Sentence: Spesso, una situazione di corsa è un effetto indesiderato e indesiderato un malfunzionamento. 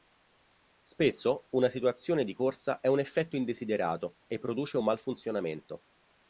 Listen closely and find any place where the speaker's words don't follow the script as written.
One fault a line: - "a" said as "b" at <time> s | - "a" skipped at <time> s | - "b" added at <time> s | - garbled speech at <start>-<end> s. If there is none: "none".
- "indesiderato" said as "produce" at 4.4 s